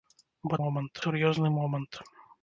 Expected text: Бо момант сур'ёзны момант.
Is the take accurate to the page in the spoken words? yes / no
yes